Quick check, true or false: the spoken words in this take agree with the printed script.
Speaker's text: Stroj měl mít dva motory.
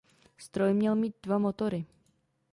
true